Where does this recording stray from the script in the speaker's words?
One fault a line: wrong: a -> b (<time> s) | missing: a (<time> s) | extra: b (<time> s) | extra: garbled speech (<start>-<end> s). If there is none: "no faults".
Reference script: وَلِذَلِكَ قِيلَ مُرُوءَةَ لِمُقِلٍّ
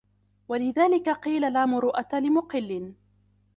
extra: لَا (1.5 s)